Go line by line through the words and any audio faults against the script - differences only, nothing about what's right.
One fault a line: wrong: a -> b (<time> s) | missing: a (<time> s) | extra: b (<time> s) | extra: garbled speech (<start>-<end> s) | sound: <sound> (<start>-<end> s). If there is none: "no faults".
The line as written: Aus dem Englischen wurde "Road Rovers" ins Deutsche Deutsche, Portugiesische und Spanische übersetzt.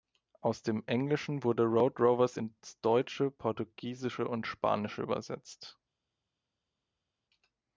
missing: Deutsche (3.3 s)